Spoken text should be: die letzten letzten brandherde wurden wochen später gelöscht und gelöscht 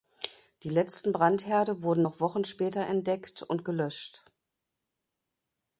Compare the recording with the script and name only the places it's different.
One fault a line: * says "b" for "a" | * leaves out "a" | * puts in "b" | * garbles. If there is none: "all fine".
* leaves out "letzten"
* puts in "noch"
* says "entdeckt" for "gelöscht"